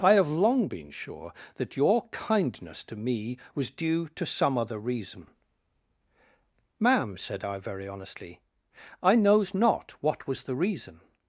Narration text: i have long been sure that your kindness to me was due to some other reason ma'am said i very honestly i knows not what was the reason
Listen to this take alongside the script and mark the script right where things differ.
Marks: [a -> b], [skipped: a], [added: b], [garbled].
i have long been sure that your kindness to me was due to some other reason ma'am said i very honestly i knows not what was the reason